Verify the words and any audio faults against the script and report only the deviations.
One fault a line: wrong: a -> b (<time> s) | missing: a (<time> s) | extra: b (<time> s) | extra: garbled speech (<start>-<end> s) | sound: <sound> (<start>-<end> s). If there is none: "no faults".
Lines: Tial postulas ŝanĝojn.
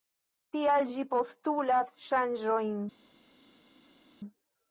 extra: ĝi (0.9 s)